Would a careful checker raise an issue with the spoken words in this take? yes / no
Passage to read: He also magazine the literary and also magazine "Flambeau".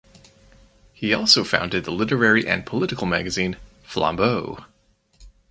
yes